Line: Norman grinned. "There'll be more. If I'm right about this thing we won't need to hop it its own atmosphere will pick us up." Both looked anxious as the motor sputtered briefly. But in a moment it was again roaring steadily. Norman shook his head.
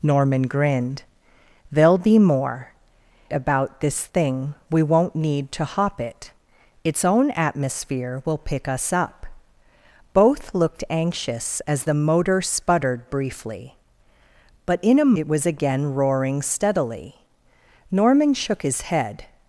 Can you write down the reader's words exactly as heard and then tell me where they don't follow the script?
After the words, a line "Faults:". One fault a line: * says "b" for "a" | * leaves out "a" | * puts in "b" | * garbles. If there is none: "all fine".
Norman grinned. "There'll be more. About this thing we won't need to hop it its own atmosphere will pick us up." Both looked anxious as the motor sputtered briefly. But in a it was again roaring steadily. Norman shook his head.
Faults:
* leaves out "If I'm right"
* leaves out "moment"